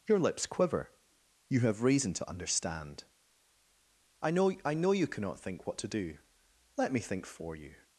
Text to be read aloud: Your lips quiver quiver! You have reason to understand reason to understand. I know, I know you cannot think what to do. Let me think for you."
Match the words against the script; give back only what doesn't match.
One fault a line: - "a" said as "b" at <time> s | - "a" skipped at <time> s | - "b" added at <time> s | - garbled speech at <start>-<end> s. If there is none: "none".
- "quiver" skipped at 0.9 s
- "reason to understand" skipped at 3.0 s